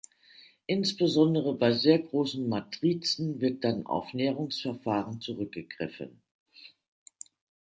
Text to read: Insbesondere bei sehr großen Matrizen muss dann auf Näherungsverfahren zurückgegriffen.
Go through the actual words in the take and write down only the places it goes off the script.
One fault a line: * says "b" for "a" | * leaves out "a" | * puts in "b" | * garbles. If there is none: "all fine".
* says "wird" for "muss"